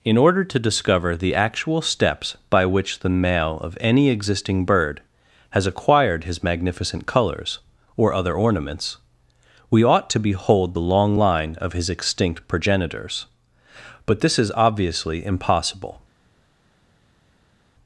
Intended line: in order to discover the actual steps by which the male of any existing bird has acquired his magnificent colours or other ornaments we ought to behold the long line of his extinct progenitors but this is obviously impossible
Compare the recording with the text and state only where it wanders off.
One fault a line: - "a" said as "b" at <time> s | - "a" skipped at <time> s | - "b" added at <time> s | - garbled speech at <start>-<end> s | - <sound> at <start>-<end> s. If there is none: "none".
none